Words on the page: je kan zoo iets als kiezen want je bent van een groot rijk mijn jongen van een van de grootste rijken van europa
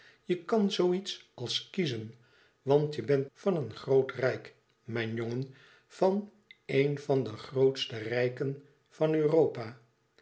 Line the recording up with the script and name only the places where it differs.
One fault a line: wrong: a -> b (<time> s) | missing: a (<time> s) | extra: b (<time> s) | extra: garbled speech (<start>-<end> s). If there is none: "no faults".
no faults